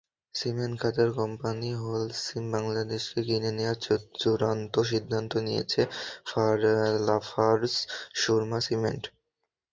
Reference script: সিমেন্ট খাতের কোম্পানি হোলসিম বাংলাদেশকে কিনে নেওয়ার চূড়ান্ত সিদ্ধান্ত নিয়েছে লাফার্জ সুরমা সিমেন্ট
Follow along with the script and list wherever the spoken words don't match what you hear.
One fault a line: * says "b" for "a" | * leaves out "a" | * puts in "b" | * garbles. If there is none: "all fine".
all fine